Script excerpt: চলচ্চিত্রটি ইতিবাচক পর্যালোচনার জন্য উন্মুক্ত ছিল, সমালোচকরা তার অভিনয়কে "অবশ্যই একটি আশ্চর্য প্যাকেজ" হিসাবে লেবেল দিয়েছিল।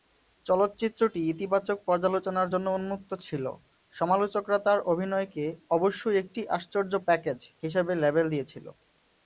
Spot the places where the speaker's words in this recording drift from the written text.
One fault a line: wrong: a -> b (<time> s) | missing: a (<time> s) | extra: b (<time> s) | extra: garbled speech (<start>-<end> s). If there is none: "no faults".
no faults